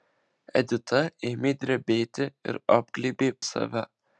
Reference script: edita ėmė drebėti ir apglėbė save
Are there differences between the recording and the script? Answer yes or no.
no